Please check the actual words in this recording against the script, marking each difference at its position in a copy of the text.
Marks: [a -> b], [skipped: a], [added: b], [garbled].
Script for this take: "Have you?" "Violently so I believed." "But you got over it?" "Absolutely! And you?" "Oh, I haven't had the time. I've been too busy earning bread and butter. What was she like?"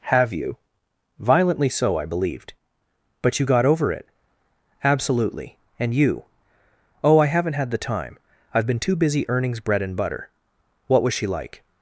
"Have you?" "Violently so I believed." "But you got over it?" "Absolutely! And you?" "Oh, I haven't had the time. I've been too busy [earning -> earnings] bread and butter. What was she like?"